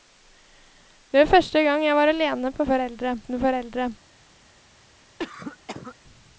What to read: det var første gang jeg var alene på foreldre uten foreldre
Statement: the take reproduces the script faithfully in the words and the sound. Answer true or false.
false